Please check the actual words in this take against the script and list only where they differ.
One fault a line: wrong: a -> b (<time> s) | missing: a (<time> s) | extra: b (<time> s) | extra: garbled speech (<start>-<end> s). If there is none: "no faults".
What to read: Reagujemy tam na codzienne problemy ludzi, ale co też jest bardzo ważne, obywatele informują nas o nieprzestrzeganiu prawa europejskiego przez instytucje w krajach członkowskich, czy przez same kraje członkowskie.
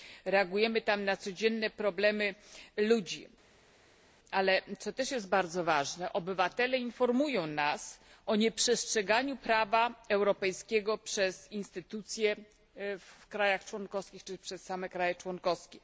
no faults